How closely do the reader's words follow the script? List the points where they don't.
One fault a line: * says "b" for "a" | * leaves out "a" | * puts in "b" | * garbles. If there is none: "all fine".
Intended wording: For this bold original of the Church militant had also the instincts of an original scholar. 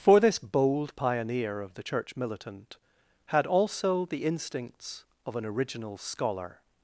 * says "pioneer" for "original"